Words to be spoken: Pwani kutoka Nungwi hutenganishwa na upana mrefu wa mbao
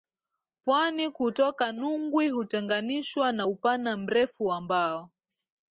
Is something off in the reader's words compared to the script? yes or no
no